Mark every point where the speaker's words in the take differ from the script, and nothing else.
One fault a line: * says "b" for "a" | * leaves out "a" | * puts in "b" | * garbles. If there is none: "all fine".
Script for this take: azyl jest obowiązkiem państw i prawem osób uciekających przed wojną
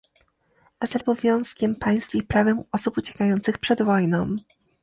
* leaves out "jest"